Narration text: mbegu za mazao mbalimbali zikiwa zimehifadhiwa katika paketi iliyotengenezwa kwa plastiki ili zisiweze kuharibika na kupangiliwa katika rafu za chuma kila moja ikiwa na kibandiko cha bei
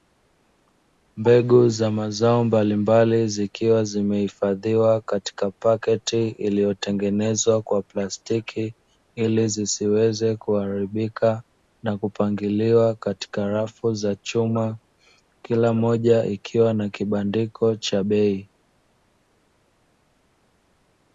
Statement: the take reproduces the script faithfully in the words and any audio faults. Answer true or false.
true